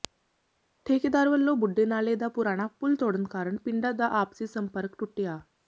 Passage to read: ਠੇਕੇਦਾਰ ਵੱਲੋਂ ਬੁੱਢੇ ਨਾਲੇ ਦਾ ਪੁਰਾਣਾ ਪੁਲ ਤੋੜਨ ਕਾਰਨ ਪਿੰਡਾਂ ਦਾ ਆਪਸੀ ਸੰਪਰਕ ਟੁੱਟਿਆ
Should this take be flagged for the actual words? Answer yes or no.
no